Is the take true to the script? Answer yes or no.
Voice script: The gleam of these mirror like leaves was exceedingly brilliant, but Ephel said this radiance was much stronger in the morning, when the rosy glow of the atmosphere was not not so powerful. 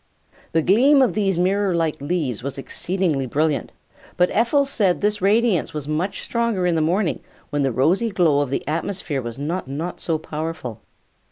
yes